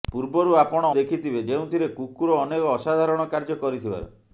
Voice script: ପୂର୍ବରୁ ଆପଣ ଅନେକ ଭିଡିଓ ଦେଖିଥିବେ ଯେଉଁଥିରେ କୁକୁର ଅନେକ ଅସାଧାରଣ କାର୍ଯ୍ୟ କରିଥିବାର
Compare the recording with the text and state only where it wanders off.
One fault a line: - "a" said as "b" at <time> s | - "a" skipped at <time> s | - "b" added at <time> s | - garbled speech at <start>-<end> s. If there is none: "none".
- "ଅନେକ ଭିଡିଓ" skipped at 0.9 s